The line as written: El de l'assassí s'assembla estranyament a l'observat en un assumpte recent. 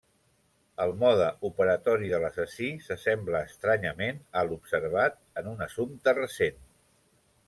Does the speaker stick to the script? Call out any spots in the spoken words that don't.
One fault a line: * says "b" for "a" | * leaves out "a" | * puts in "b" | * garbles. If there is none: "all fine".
* puts in "mode operatori"